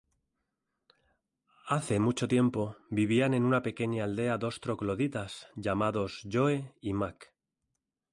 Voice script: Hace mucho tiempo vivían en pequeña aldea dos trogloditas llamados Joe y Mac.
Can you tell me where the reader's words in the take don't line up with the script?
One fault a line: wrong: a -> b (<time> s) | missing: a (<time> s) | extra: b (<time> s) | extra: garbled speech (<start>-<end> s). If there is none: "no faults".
extra: una (3.4 s)